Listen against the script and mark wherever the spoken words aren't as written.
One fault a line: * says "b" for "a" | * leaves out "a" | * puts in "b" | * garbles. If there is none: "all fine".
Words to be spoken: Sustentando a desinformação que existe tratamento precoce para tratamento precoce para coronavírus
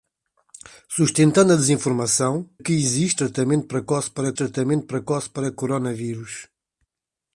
all fine